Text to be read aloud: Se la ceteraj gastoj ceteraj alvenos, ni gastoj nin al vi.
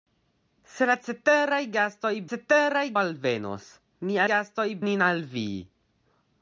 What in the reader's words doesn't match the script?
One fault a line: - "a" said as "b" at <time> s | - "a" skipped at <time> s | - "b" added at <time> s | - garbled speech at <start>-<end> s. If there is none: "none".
none